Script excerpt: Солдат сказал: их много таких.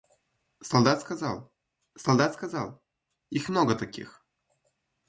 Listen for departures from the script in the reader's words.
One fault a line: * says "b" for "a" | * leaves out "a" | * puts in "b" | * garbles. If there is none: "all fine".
* puts in "солдат сказал"